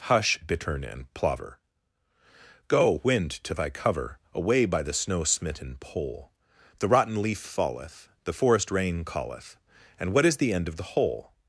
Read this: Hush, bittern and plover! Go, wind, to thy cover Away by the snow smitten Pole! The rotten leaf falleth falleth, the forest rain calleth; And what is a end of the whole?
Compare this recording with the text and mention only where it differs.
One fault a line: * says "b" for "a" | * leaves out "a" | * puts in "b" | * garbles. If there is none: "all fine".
* leaves out "falleth"
* says "the" for "a"